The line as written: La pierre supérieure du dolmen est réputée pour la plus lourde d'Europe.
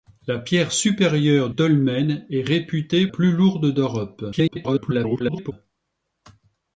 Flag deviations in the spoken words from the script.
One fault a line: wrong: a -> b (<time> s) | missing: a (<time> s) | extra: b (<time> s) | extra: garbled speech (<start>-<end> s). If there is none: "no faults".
missing: du (1.5 s)
missing: pour la (3.1 s)
extra: garbled speech (4.3-5.5 s)